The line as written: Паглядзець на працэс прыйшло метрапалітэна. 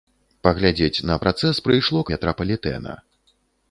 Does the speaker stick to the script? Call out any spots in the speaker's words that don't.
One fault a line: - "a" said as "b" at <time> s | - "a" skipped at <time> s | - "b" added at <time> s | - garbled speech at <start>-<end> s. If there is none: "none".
none